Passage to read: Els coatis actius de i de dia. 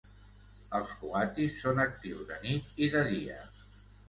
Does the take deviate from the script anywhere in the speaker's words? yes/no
yes